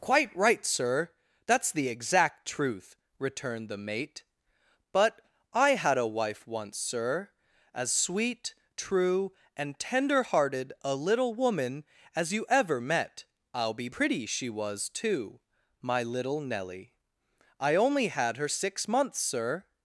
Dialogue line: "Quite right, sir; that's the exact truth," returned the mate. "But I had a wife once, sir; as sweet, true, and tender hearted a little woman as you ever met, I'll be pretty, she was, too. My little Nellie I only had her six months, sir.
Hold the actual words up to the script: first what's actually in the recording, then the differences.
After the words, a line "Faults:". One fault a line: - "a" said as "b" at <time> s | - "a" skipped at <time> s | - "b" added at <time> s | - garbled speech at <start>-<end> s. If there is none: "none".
"Quite right, sir; that's the exact truth," returned the mate. "But I had a wife once, sir; as sweet, true, and tender hearted a little woman as you ever met, I'll be pretty, she was, too. My little Nellie I only had her six months, sir.
Faults:
none